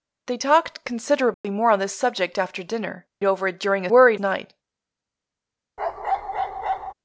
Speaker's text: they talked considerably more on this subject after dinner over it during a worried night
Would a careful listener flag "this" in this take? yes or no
no